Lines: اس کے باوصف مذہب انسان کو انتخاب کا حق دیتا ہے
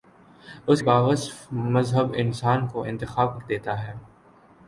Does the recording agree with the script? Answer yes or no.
no